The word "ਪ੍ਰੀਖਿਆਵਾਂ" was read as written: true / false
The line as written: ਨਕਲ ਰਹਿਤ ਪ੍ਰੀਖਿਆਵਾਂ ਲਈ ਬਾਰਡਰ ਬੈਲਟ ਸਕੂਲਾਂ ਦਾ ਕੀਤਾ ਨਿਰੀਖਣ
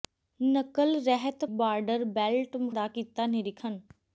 false